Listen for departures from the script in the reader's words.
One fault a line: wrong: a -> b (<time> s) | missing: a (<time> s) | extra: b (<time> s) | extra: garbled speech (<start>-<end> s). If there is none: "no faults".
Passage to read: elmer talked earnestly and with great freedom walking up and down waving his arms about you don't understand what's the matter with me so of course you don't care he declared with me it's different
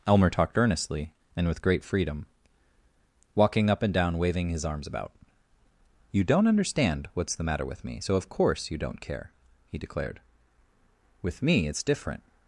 no faults